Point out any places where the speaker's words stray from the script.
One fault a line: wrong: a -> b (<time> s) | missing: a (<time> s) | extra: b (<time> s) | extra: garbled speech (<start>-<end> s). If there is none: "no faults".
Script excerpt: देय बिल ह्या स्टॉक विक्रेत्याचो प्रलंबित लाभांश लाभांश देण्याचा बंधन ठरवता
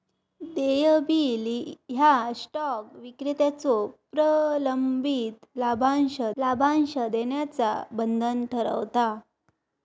no faults